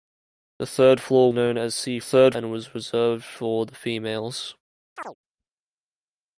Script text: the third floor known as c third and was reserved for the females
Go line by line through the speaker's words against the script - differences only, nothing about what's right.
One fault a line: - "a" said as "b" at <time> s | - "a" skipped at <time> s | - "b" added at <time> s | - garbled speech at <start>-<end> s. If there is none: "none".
none